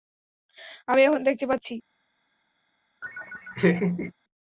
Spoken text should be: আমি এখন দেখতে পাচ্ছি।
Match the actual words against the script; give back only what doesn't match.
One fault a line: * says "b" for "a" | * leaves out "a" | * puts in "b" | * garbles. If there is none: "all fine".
all fine